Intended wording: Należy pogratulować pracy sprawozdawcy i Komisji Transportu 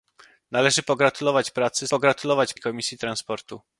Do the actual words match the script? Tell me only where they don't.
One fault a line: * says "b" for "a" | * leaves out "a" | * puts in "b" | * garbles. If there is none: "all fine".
* says "pogratulować" for "sprawozdawcy"